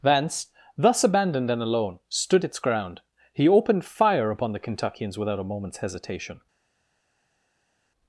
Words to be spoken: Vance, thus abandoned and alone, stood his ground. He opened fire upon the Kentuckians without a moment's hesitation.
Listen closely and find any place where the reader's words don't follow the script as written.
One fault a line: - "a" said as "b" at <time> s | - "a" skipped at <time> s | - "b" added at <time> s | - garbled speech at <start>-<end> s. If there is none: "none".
- "his" said as "its" at 2.4 s